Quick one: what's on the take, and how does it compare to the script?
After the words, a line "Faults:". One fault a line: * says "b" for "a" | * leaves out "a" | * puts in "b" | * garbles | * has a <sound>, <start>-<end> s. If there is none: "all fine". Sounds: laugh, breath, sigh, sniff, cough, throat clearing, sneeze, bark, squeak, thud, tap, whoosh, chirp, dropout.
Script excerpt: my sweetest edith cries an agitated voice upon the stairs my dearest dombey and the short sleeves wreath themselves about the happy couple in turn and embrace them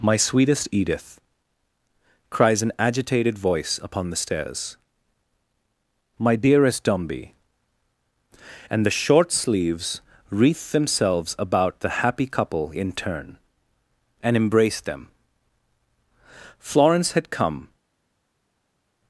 my sweetest edith cries an agitated voice upon the stairs my dearest dombey and the short sleeves wreath themselves about the happy couple in turn and embrace them florence had come
Faults:
* puts in "florence had come"